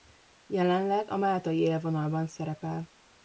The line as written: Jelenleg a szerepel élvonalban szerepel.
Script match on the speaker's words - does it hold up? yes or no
no